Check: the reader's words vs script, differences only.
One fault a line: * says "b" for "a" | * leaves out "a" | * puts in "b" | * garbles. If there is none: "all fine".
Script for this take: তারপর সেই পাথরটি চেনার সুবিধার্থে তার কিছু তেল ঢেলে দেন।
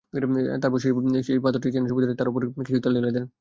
* puts in "উপর"